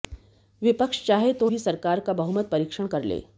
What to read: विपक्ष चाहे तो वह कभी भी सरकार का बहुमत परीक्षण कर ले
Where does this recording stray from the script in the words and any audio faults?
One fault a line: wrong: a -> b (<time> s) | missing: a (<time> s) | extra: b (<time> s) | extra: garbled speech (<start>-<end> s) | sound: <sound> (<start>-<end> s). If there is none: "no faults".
missing: वह कभी (1.5 s)